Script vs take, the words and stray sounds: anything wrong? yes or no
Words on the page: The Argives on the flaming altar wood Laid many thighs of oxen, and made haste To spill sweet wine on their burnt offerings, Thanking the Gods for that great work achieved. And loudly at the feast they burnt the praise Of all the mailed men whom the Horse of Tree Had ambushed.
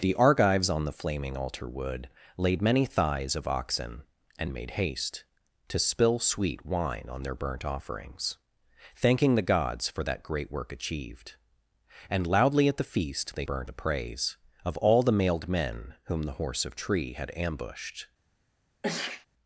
yes